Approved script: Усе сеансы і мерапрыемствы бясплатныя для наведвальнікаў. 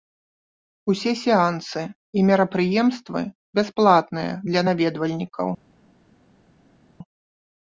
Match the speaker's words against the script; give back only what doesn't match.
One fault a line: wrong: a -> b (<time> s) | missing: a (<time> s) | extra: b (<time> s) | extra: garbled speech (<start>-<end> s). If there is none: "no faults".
no faults